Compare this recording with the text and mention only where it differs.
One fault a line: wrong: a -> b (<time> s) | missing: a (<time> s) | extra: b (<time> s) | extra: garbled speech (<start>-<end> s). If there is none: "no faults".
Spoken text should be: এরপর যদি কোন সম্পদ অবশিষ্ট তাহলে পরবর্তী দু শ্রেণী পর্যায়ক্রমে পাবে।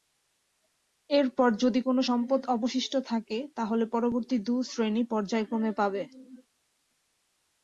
extra: থাকে (3.1 s)